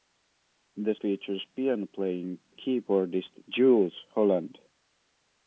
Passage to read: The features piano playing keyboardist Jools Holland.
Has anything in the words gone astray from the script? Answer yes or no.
no